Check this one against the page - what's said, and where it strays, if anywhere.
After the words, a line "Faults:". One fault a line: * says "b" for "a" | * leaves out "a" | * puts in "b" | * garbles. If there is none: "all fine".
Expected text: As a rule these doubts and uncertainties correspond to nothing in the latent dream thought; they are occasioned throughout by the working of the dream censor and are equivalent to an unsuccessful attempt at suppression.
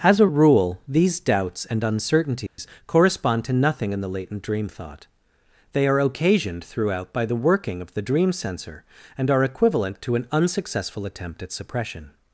As a rule these doubts and uncertainties correspond to nothing in the latent dream thought; they are occasioned throughout by the working of the dream censor and are equivalent to an unsuccessful attempt at suppression.
Faults:
all fine